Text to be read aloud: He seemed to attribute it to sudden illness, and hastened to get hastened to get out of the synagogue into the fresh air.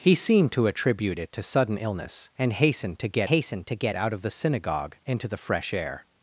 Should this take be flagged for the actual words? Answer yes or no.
no